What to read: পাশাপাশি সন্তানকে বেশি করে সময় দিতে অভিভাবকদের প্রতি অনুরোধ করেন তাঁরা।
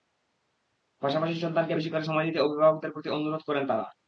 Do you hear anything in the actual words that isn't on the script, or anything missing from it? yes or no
no